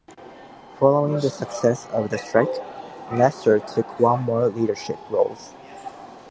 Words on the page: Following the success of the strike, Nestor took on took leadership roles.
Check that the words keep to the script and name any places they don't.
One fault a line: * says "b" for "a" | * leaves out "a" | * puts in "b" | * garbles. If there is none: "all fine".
* says "more" for "took"